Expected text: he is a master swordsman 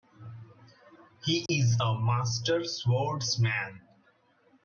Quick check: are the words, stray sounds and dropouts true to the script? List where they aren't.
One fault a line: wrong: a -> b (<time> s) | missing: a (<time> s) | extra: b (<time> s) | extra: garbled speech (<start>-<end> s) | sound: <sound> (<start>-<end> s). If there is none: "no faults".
sound: dropout (1.5-1.5 s)